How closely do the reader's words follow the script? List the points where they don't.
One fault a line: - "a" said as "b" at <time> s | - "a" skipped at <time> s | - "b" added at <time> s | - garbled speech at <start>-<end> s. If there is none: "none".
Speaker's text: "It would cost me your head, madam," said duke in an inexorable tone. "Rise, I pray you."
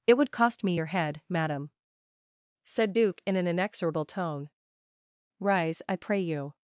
none